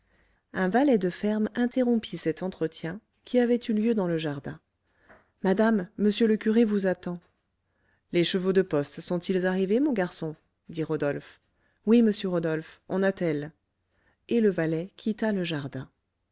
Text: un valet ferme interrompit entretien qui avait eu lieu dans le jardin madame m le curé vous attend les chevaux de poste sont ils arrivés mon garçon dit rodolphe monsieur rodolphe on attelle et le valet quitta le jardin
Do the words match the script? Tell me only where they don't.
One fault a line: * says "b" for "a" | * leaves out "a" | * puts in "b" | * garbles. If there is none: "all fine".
* puts in "de"
* puts in "cet"
* puts in "oui"